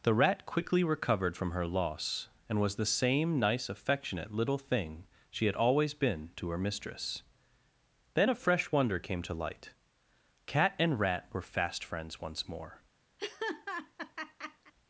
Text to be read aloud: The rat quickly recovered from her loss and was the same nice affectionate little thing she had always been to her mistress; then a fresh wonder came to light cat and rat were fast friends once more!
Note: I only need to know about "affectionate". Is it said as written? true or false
true